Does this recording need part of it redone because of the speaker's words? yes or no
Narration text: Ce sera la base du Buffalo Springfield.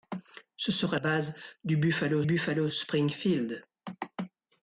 yes